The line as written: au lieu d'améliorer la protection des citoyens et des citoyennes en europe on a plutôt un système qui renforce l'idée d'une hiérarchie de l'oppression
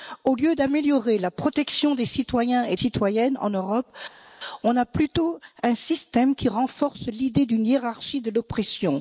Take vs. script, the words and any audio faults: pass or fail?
fail